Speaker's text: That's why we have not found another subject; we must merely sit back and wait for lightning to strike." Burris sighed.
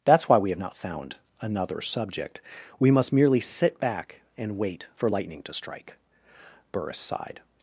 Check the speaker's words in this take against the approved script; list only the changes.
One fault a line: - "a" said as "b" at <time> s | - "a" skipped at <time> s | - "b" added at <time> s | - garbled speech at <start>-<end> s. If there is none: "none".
none